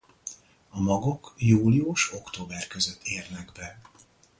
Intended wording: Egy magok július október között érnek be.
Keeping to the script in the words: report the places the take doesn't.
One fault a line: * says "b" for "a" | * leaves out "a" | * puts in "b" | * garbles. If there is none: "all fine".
* says "A" for "Egy"